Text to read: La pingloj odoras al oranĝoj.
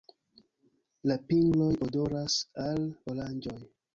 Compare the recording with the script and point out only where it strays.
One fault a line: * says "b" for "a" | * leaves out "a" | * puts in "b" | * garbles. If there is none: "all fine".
all fine